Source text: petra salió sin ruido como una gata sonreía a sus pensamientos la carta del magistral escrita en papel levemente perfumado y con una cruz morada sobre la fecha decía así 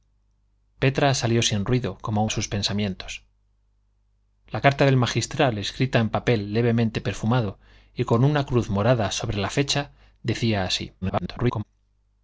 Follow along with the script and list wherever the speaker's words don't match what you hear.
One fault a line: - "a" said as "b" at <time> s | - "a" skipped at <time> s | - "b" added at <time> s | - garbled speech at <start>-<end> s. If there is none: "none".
- "una gata sonreía" skipped at 2.2 s
- garbled speech at 11.0-11.6 s